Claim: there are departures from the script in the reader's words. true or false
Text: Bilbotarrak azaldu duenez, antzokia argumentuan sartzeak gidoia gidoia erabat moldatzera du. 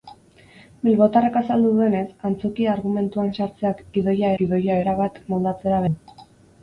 false